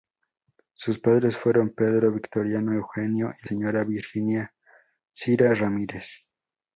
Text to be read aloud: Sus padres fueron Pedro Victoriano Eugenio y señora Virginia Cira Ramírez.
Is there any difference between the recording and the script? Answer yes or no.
no